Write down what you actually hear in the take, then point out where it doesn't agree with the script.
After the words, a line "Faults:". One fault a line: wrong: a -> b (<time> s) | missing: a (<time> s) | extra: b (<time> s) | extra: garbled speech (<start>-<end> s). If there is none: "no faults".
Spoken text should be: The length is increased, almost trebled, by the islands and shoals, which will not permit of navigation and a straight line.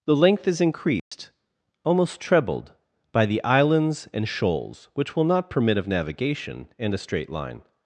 The length is increased, almost trebled, by the islands and shoals, which will not permit of navigation and a straight line.
Faults:
no faults